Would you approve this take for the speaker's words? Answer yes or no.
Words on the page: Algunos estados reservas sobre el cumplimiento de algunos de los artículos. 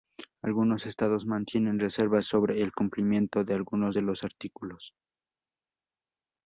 no